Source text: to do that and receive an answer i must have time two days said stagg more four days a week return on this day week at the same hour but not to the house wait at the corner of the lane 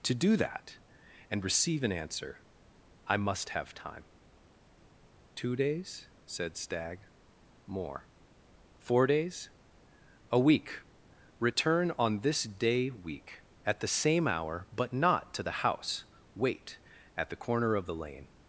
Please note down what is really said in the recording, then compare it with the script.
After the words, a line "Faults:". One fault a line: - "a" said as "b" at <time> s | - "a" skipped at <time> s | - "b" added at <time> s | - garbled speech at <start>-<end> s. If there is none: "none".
to do that and receive an answer i must have time two days said stagg more four days a week return on this day week at the same hour but not to the house wait at the corner of the lane
Faults:
none